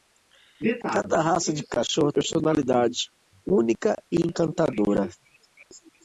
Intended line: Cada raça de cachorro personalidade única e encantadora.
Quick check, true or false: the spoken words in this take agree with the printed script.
true